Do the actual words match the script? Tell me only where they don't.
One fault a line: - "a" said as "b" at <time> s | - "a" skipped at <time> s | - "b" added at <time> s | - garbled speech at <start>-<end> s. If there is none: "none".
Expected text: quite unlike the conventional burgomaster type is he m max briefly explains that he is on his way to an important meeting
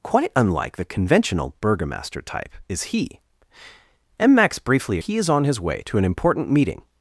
- "explains that" skipped at 5.0 s